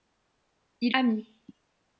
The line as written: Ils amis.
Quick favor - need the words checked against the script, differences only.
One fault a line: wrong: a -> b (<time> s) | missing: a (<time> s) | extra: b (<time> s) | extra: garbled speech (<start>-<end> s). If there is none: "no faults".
no faults